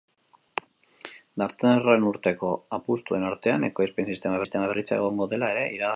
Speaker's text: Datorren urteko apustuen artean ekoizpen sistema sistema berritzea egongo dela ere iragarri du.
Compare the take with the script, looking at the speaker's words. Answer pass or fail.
pass